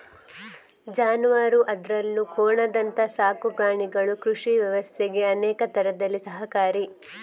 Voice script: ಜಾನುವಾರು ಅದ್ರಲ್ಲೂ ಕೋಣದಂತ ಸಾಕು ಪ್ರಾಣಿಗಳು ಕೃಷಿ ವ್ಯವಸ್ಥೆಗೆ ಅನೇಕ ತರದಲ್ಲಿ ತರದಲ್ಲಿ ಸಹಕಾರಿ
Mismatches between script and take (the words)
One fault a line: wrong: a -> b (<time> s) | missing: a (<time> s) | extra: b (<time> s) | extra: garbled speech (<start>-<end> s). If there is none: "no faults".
missing: ತರದಲ್ಲಿ (6.2 s)